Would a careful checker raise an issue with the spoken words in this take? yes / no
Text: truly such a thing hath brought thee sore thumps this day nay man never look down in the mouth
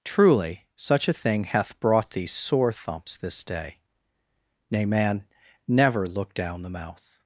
yes